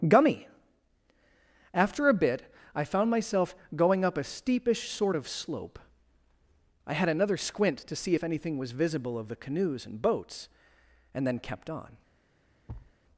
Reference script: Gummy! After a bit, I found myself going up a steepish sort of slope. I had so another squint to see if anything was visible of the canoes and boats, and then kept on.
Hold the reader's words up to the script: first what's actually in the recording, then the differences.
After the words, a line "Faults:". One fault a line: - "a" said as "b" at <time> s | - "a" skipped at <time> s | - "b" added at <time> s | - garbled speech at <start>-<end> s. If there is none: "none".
Gummy! After a bit, I found myself going up a steepish sort of slope. I had another squint to see if anything was visible of the canoes and boats, and then kept on.
Faults:
- "so" skipped at 7.1 s